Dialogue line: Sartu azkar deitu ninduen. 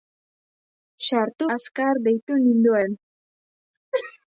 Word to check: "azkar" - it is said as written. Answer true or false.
true